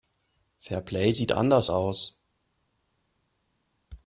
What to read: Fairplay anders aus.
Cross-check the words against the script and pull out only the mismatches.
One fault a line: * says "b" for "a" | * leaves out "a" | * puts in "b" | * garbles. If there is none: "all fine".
* puts in "sieht"